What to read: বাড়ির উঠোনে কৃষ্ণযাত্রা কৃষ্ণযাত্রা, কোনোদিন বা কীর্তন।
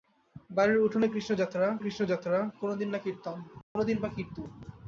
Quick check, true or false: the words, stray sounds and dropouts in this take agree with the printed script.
false